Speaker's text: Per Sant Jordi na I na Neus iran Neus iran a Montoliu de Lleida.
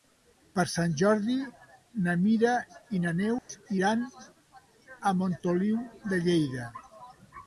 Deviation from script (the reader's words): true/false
true